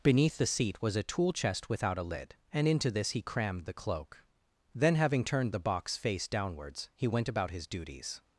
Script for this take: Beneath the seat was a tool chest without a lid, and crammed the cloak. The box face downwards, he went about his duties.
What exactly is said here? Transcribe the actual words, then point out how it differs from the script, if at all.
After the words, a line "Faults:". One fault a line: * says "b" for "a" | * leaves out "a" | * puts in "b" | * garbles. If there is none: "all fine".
Beneath the seat was a tool chest without a lid, and into this he crammed the cloak. Then, having turned the box face downwards, he went about his duties.
Faults:
* puts in "into this he"
* puts in "Then having turned"